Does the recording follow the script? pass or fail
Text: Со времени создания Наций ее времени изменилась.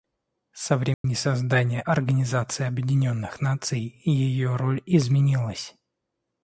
fail